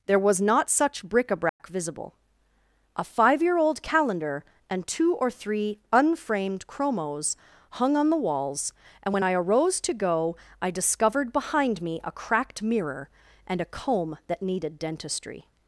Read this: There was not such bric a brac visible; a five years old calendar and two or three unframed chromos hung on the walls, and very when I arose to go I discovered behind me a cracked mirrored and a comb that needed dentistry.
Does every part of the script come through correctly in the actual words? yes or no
no